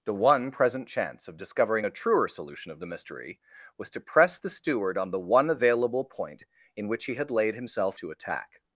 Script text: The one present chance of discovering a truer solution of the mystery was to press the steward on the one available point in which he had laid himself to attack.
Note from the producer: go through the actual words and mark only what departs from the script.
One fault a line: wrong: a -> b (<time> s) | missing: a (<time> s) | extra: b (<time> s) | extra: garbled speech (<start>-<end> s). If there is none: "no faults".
no faults